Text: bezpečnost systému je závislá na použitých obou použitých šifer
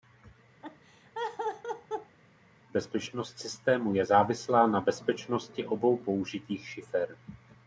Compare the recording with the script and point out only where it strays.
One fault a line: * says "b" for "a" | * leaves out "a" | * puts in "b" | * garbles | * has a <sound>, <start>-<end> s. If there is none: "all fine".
* has a laugh, 0.6-2.2 s
* says "bezpečnosti" for "použitých"